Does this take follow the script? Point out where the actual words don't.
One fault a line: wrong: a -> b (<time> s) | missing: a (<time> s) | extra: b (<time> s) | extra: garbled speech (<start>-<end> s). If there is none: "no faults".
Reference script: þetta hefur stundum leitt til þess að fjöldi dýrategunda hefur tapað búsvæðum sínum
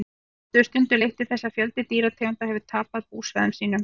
no faults